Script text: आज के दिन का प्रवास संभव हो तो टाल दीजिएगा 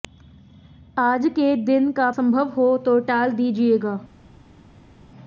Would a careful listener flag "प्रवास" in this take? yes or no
yes